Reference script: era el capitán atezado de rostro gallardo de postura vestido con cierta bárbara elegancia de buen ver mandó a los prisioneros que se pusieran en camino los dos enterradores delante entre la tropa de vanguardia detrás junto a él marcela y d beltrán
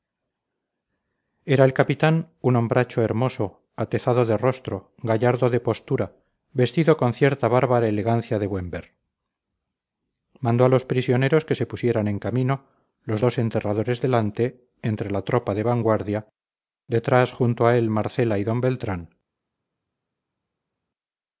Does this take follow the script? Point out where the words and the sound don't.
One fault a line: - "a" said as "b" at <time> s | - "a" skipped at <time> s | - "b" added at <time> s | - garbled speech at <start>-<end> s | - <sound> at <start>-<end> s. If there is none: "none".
- "un hombracho hermoso" added at 2.4 s